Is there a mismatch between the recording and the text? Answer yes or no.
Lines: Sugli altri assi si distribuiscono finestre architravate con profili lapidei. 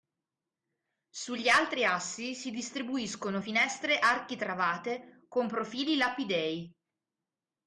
no